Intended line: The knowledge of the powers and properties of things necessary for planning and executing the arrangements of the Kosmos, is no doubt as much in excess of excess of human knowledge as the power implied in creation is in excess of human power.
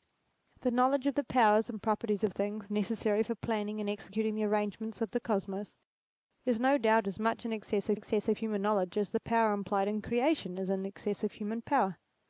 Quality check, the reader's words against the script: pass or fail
pass